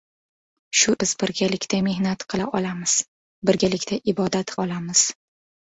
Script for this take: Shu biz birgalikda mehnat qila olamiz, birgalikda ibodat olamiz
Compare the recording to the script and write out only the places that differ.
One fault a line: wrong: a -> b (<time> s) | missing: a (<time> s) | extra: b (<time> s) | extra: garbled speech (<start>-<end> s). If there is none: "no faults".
no faults